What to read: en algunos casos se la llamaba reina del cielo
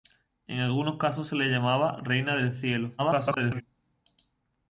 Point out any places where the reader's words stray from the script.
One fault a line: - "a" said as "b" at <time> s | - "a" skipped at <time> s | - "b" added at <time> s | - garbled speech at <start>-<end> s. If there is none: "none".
- garbled speech at 3.0-3.6 s